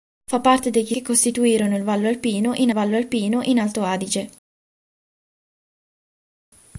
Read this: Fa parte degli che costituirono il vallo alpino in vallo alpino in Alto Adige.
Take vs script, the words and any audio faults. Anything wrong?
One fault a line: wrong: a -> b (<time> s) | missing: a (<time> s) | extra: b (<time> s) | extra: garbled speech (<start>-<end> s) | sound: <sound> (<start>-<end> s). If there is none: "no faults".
no faults